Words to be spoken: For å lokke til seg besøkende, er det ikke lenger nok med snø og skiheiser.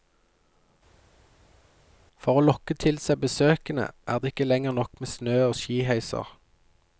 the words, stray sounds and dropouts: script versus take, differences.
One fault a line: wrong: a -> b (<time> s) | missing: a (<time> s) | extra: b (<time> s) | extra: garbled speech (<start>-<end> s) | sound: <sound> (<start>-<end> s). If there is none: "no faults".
no faults